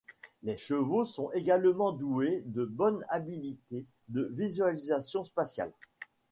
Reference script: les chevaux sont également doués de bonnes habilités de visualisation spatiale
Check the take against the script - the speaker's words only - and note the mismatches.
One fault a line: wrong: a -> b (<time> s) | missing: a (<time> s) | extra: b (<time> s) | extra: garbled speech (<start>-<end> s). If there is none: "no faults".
no faults